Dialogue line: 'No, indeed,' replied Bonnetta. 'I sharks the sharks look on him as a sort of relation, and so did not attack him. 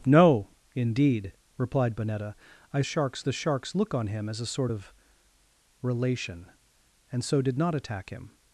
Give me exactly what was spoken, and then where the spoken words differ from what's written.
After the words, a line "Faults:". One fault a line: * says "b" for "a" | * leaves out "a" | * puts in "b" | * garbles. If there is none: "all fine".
'No, indeed,' replied Bonnetta. 'I sharks the sharks look on him as a sort of relation, and so did not attack him.
Faults:
all fine